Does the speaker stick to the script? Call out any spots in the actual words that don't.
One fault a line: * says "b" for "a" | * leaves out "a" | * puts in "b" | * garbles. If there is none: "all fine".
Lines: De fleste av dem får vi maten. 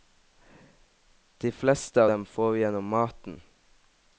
* puts in "gjennom"